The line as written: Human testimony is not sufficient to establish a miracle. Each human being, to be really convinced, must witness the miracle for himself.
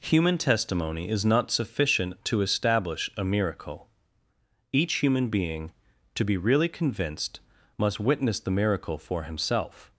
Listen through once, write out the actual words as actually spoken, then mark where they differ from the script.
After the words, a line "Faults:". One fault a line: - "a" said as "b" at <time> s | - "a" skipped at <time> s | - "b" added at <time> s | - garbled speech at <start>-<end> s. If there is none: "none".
Human testimony is not sufficient to establish a miracle. Each human being, to be really convinced, must witness the miracle for himself.
Faults:
none